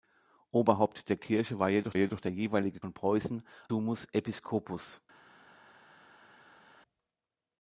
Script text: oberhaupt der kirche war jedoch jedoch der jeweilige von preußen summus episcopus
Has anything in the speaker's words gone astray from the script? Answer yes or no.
no